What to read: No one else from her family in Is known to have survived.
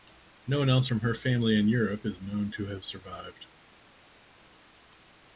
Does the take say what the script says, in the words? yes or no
no